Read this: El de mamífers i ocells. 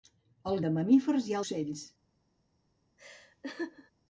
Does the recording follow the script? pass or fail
pass